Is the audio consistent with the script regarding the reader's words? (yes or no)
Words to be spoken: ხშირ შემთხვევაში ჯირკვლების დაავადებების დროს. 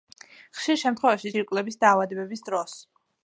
yes